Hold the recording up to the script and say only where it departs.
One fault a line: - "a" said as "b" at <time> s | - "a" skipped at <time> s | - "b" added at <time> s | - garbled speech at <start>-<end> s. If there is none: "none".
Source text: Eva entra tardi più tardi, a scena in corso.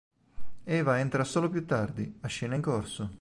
- "tardi" said as "solo" at 1.2 s